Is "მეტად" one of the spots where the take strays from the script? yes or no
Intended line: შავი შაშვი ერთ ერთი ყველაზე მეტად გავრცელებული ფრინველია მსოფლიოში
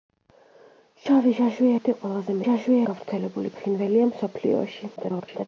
yes